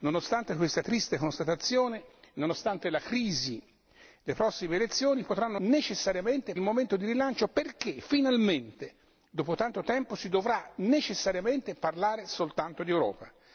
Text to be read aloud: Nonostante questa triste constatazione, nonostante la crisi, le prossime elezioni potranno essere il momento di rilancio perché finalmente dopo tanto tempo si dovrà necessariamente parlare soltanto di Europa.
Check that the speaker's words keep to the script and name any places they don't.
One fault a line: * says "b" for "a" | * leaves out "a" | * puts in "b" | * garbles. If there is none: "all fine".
* says "necessariamente" for "essere"